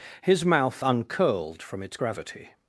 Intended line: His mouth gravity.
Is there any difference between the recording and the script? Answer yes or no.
yes